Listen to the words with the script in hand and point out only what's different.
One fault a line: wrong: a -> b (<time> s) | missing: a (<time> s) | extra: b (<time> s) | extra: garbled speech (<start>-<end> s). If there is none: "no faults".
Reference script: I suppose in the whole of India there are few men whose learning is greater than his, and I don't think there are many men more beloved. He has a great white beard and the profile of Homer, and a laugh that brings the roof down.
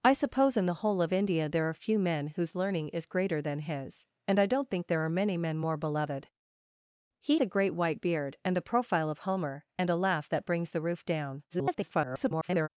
missing: has (7.4 s)
extra: garbled speech (11.5-12.7 s)